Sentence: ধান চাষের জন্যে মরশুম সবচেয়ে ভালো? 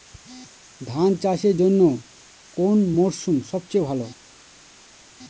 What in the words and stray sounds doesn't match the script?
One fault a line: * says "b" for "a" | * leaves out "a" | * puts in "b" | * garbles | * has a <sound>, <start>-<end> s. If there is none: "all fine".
* puts in "কোন"